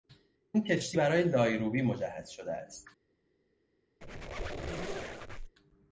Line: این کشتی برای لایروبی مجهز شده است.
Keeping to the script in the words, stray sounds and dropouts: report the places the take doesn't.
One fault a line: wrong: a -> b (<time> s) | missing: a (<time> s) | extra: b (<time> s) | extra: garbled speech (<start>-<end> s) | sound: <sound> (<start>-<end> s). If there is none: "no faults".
sound: squeak (4.0-5.5 s)